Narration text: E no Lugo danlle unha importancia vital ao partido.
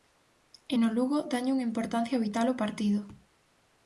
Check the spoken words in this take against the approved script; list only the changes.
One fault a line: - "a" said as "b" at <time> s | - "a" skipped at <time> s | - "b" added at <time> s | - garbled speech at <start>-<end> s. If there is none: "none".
none